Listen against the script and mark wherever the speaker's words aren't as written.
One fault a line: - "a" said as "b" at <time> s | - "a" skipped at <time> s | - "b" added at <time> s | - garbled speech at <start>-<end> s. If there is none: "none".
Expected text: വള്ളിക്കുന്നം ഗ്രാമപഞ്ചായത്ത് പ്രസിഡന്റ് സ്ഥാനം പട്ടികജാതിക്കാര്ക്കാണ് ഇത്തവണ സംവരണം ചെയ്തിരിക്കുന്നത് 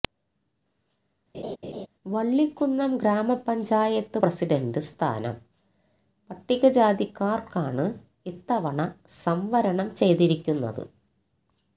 none